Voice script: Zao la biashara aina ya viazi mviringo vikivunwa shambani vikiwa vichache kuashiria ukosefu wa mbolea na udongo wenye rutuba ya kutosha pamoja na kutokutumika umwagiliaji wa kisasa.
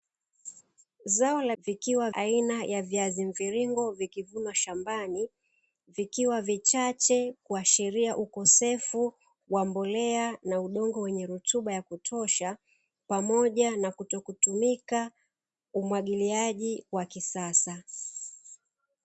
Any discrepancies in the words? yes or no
yes